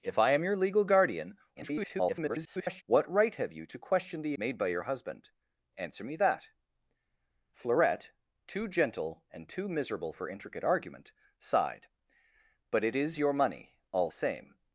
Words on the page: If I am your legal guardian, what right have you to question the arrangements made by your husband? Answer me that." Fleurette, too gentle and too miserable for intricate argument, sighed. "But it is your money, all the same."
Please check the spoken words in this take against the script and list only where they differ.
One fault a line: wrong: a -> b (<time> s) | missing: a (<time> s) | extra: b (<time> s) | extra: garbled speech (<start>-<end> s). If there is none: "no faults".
extra: garbled speech (1.6-2.8 s)
missing: arrangements (4.4 s)
missing: the (14.1 s)